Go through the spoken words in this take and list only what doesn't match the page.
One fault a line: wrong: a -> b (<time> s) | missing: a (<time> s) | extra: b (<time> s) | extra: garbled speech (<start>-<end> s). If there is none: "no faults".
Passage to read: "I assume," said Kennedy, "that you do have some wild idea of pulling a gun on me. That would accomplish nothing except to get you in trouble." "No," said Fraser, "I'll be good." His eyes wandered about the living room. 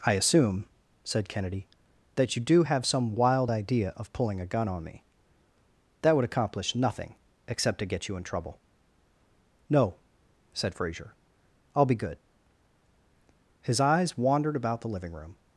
no faults